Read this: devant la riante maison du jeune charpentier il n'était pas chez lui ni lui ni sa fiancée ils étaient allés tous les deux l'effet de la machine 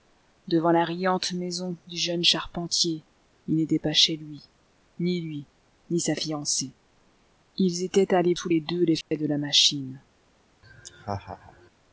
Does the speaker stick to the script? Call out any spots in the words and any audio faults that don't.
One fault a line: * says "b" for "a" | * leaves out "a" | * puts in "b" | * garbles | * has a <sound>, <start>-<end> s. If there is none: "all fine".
* has a dropout, 9.0-9.1 s
* has a laugh, 10.6-11.7 s